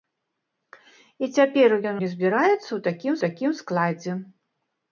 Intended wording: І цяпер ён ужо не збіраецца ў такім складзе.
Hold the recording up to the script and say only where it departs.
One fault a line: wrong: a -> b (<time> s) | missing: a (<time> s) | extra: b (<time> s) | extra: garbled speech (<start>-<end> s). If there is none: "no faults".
missing: ужо (2.0 s)
extra: такім (3.3 s)